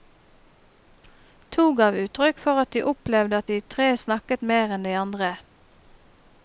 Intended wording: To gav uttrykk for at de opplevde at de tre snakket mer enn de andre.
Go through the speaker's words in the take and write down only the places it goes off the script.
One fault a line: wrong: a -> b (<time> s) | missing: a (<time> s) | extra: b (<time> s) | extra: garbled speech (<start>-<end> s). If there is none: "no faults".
no faults